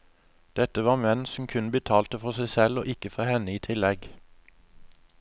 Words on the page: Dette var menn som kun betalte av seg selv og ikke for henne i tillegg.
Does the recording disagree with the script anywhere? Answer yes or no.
yes